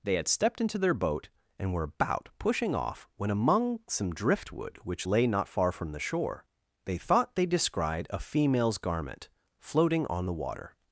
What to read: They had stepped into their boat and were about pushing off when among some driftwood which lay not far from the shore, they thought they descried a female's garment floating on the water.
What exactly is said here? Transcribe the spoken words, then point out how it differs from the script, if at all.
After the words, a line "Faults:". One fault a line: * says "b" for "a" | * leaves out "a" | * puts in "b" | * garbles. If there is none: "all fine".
They had stepped into their boat and were about pushing off when among some driftwood which lay not far from the shore, they thought they descried a female's garment floating on the water.
Faults:
all fine